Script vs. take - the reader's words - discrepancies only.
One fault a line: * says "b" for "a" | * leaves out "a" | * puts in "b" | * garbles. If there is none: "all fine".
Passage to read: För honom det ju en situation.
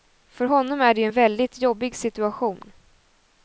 * puts in "är"
* puts in "väldigt jobbig"